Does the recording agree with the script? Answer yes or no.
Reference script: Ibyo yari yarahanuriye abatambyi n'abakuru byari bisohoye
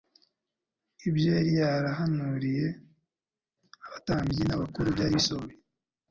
yes